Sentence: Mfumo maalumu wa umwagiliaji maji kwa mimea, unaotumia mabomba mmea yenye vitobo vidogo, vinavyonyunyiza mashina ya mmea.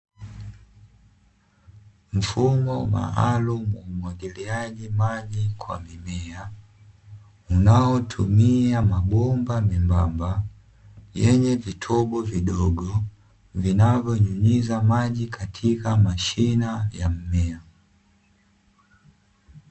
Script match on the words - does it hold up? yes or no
no